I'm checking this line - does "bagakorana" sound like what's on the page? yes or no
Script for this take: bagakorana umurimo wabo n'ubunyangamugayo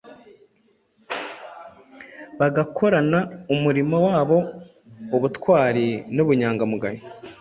yes